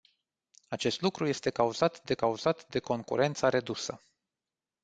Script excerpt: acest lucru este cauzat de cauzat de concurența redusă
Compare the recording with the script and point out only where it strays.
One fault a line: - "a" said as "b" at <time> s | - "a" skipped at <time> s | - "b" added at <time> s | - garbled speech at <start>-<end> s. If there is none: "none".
none